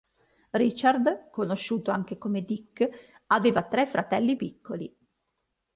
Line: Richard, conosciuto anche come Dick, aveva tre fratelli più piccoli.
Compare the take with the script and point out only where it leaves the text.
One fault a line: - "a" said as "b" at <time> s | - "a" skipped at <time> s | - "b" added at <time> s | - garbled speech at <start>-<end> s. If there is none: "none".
- "più" skipped at 4.3 s